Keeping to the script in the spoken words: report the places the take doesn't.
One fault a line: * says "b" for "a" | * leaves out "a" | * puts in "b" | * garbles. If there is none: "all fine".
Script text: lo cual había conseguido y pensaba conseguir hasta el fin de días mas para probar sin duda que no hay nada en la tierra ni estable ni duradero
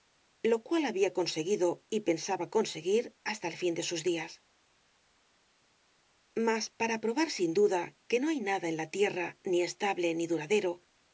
* puts in "sus"